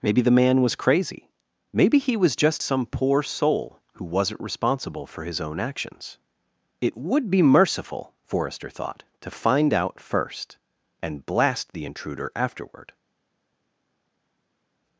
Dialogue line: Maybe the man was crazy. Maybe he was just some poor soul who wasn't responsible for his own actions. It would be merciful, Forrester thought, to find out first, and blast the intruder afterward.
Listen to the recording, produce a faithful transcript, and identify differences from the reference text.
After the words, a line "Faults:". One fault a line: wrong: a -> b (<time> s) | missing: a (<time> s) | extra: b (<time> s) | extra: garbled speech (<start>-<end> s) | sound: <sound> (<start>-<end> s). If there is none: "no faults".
Maybe the man was crazy. Maybe he was just some poor soul who wasn't responsible for his own actions. It would be merciful, Forrester thought, to find out first, and blast the intruder afterward.
Faults:
no faults